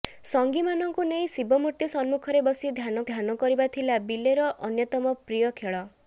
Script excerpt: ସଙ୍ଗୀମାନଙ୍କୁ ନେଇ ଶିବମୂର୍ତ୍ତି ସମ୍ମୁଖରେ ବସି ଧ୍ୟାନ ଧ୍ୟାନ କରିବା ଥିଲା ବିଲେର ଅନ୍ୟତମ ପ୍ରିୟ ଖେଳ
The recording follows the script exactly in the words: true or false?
true